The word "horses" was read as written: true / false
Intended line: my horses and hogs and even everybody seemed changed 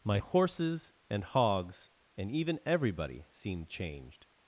true